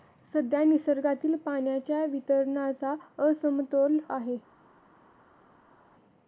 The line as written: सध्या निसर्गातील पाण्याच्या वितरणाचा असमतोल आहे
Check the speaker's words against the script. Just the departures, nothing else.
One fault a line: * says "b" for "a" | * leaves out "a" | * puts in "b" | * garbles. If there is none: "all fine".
all fine